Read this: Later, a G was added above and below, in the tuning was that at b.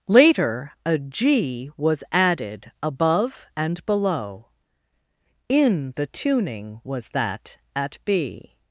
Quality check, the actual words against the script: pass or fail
pass